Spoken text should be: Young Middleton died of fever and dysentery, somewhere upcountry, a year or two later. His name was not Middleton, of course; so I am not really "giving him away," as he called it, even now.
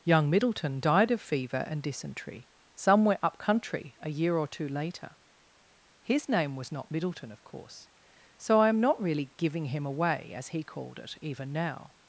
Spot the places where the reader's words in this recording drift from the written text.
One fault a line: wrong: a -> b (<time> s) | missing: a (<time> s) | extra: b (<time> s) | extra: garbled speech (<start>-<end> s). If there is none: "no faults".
no faults